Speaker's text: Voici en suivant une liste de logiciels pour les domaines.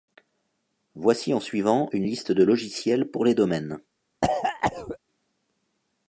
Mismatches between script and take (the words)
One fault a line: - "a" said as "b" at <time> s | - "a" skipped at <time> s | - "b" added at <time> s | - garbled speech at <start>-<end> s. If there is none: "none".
none